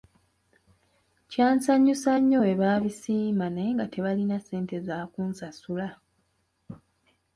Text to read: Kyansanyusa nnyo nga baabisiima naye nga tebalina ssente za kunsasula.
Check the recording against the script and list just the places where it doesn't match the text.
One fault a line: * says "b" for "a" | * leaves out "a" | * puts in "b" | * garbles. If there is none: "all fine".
* says "bwe" for "nga"